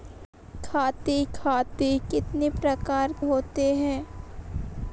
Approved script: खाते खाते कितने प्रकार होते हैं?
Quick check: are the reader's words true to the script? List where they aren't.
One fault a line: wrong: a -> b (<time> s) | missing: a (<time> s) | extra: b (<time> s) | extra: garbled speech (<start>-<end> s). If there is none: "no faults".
no faults